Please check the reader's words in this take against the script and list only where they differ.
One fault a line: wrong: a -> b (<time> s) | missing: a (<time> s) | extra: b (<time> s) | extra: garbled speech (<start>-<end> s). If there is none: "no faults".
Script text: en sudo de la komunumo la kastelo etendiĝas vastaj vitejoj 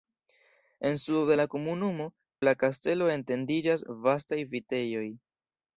no faults